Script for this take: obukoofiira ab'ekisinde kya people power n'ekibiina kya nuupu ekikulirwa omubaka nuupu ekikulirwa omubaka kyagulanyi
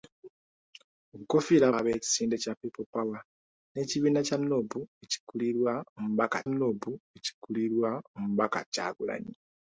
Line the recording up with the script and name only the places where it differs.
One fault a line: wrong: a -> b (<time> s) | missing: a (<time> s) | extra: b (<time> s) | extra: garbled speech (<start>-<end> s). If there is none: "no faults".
no faults